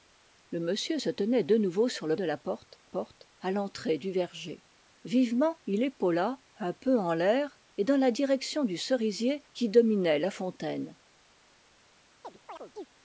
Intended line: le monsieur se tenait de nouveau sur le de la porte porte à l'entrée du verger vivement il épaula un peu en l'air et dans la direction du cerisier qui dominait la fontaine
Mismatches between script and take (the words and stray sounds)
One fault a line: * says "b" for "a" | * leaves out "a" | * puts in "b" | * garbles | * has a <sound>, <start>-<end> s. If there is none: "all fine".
* has a chirp, 12.2-12.9 s